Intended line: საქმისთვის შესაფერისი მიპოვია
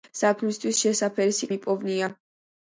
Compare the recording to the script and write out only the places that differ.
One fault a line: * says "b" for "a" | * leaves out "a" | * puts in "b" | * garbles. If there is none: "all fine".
all fine